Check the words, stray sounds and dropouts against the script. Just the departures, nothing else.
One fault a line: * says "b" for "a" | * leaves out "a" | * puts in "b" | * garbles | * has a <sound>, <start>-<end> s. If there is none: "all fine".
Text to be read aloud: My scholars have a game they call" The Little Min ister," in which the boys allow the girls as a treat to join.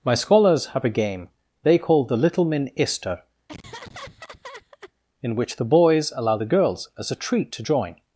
* has a laugh, 3.5-4.9 s